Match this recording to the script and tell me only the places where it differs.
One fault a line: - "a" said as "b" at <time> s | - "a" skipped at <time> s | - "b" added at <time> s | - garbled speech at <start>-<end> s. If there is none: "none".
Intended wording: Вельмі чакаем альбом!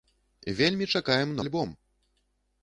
none